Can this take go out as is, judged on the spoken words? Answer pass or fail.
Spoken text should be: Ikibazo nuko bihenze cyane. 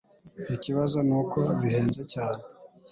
pass